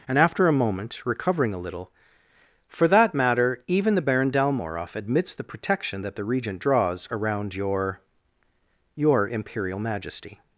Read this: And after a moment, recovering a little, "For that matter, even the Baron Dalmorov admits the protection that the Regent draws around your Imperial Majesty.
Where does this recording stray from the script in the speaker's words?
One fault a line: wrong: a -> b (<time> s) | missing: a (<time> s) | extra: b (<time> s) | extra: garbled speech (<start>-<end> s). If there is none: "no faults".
extra: your (8.9 s)